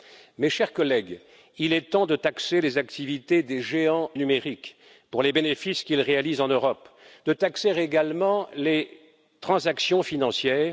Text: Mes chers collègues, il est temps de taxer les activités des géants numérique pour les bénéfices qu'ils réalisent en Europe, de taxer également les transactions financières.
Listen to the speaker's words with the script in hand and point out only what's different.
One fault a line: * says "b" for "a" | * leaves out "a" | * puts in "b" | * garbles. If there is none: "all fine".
all fine